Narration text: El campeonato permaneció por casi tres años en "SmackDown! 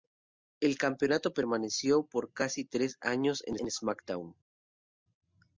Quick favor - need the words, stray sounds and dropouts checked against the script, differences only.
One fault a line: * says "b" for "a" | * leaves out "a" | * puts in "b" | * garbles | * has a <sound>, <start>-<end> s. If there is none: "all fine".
* puts in "en"